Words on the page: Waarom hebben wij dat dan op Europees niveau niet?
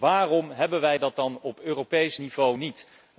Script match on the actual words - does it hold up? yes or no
yes